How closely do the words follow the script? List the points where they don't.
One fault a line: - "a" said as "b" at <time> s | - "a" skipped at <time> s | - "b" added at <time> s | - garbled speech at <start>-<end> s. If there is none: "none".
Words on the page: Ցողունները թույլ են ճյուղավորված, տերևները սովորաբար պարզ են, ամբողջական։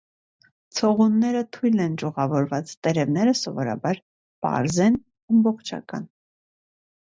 none